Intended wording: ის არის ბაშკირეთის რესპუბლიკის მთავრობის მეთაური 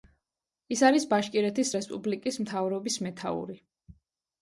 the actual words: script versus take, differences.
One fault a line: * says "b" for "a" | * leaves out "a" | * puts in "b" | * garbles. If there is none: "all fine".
all fine